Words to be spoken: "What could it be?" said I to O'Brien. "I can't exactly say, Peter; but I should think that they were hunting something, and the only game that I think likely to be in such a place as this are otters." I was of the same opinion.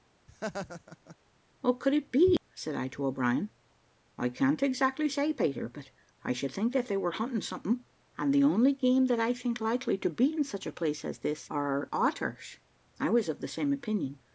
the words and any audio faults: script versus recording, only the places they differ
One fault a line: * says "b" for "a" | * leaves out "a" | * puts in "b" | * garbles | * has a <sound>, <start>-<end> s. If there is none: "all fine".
* has a laugh, 0.3-1.2 s